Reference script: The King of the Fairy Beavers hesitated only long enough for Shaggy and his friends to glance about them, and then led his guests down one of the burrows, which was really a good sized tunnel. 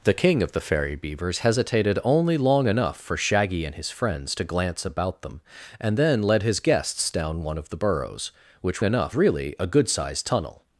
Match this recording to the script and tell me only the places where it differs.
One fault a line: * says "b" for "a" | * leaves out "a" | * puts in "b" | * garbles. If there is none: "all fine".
* says "enough" for "was"